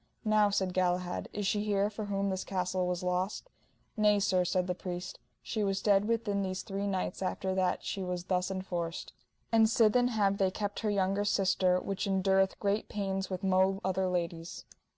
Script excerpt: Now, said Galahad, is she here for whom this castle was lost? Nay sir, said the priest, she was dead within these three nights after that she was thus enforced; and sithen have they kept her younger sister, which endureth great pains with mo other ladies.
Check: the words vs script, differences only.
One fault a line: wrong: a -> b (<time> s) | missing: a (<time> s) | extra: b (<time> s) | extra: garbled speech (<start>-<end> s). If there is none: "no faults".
no faults